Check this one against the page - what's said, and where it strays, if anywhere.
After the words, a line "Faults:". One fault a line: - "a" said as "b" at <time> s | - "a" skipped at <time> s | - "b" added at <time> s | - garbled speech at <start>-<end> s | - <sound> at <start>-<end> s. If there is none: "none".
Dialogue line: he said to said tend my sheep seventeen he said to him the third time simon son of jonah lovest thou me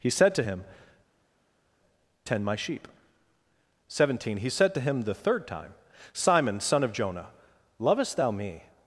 he said to him tend my sheep seventeen he said to him the third time simon son of jonah lovest thou me
Faults:
- "said" said as "him" at 0.4 s